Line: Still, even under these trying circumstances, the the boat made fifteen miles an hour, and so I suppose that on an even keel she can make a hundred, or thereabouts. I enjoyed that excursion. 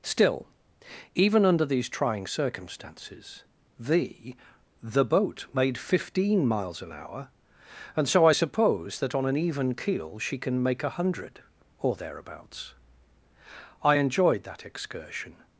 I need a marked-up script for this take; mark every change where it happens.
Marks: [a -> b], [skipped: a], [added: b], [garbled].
Still, even under these trying circumstances, the the boat made fifteen miles an hour, and so I suppose that on an even keel she can make a hundred, or thereabouts. I enjoyed that excursion.